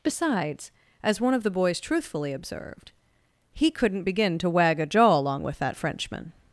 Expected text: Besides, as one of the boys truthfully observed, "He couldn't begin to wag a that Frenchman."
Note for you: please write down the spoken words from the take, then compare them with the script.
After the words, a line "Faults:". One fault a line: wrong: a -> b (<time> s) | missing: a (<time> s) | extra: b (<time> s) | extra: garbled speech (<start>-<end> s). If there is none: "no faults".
Besides, as one of the boys truthfully observed, "He couldn't begin to wag a jaw along with that Frenchman."
Faults:
extra: jaw along with (4.9 s)